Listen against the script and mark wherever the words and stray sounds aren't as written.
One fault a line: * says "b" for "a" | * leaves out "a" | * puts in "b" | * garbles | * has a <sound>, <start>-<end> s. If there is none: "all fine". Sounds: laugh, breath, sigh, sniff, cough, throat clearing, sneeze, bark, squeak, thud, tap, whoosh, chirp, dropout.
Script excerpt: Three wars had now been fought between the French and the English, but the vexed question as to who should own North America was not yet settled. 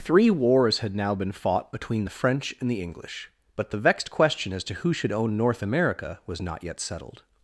all fine